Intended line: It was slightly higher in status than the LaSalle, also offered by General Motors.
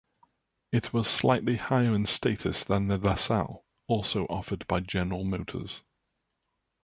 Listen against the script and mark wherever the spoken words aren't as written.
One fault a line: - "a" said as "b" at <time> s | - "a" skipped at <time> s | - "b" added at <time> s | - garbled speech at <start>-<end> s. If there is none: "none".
none